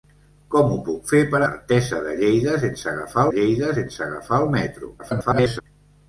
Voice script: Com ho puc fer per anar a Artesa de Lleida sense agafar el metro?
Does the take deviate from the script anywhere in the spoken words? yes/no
yes